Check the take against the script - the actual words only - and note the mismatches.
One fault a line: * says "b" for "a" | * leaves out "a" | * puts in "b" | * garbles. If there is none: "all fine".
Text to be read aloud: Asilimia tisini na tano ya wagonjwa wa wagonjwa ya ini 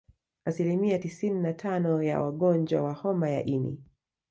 * says "homa" for "wagonjwa"